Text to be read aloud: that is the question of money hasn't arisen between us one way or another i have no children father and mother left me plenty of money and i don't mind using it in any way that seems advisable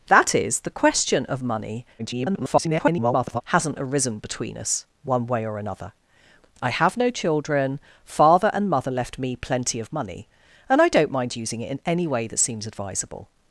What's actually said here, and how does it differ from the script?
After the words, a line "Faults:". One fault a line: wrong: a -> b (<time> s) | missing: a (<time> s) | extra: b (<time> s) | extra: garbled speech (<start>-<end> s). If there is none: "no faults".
that is the question of money [garbled] hasn't arisen between us one way or another i have no children father and mother left me plenty of money and i don't mind using it in any way that seems advisable
Faults:
extra: garbled speech (2.0-3.4 s)